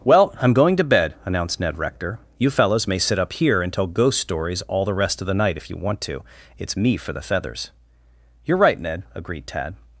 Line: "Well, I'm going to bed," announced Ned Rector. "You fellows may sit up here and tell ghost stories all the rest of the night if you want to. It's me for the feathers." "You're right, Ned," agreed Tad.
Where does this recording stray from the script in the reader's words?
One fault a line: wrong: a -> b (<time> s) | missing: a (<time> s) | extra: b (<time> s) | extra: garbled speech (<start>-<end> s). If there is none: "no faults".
no faults